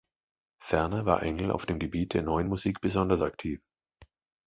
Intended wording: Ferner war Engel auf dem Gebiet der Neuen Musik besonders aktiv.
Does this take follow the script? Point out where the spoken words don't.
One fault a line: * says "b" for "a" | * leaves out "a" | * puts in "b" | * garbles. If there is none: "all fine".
all fine